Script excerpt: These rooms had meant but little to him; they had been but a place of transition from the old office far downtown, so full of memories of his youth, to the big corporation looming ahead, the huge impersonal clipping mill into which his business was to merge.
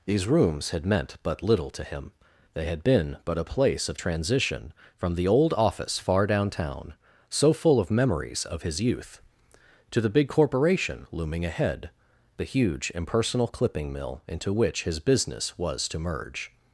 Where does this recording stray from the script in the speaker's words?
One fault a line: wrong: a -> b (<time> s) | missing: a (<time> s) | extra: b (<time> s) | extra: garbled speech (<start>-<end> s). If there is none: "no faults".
no faults